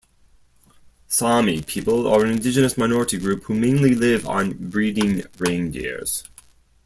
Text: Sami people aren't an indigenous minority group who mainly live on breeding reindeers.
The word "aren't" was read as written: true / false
false